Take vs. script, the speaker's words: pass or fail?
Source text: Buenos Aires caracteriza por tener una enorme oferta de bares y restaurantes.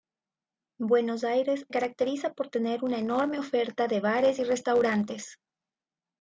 pass